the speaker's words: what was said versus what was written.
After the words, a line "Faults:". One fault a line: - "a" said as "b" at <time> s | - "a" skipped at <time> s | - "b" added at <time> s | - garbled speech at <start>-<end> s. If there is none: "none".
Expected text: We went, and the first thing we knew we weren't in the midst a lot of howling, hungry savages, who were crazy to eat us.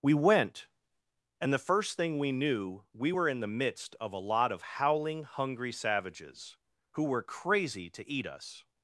We went, and the first thing we knew we were in the midst of a lot of howling, hungry savages, who were crazy to eat us.
Faults:
- "weren't" said as "were" at 3.1 s
- "of" added at 4.0 s